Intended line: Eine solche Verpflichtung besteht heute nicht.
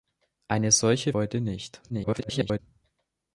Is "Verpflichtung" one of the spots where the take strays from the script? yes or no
yes